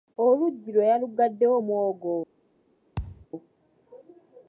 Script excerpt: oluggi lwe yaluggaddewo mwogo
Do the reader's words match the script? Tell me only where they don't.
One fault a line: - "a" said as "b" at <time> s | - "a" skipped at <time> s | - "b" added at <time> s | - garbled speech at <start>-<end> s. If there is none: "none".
none